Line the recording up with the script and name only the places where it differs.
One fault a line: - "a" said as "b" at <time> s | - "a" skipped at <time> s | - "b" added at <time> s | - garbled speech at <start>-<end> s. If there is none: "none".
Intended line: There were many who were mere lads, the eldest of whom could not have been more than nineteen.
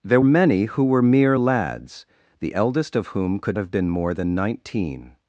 - "were" skipped at 0.2 s
- "not" skipped at 3.6 s